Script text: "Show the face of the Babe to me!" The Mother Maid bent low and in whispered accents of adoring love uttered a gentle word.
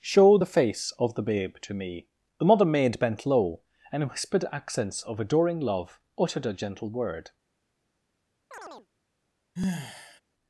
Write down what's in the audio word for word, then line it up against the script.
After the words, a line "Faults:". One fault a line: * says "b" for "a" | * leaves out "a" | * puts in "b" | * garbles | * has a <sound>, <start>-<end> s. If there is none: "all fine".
"Show the face of the Babe to me!" The Mother Maid bent low and in whispered accents of adoring love uttered a gentle word.
Faults:
* has a chirp, 8.5-8.9 s
* has a sigh, 9.6-10.2 s